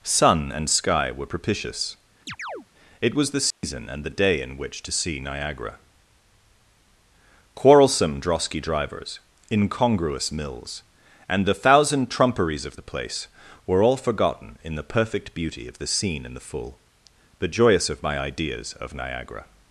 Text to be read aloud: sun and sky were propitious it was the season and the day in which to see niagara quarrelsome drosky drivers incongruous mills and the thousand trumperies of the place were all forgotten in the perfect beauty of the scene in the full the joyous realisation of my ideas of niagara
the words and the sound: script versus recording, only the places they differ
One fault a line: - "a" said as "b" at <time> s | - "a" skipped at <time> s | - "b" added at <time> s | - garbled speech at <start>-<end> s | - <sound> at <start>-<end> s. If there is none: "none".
- chirp at 2.3-2.7 s
- dropout at 3.5-3.6 s
- "realisation" skipped at 17.9 s